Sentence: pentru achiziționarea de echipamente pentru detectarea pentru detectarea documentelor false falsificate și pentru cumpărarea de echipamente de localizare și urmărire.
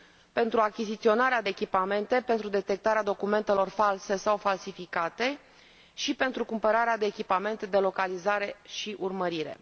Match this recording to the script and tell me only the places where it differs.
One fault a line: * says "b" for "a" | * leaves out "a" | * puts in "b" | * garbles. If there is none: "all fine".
* leaves out "pentru detectarea"
* puts in "sau"